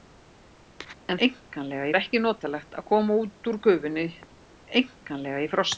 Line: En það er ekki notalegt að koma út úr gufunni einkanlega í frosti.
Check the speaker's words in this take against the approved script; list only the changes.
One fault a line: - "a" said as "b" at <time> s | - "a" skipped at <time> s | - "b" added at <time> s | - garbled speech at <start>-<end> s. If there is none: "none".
- "það" said as "einkanlega" at 1.3 s